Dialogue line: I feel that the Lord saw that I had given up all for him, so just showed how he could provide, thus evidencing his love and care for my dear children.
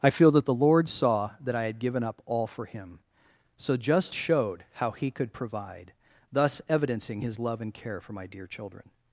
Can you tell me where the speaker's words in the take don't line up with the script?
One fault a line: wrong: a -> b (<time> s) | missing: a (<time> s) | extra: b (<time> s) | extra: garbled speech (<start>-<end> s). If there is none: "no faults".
no faults